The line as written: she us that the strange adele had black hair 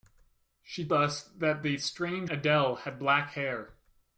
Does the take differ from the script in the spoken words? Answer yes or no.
no